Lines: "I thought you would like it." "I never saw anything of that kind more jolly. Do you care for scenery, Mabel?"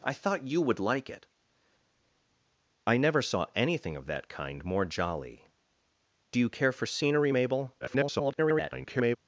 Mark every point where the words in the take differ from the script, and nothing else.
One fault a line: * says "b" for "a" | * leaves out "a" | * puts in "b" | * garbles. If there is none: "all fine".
* garbles